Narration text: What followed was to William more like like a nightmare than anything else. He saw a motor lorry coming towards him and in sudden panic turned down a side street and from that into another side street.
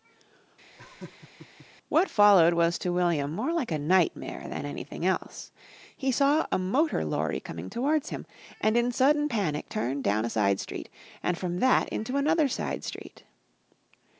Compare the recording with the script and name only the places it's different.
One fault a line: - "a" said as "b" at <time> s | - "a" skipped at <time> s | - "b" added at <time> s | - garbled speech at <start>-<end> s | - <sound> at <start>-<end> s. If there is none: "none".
- laugh at 0.8-1.7 s
- "like" skipped at 3.7 s